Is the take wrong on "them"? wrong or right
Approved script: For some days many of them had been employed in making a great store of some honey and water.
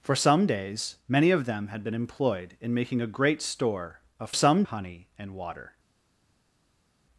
right